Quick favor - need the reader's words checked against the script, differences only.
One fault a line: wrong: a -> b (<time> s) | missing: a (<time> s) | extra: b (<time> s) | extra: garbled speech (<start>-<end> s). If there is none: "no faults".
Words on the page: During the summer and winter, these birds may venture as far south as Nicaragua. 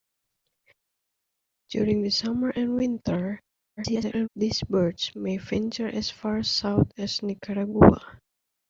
extra: garbled speech (3.8-4.3 s)